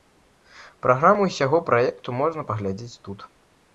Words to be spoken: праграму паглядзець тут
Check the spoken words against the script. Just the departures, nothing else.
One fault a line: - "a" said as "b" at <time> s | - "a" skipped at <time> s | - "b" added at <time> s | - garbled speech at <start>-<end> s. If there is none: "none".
- "ўсяго праекту можна" added at 1.3 s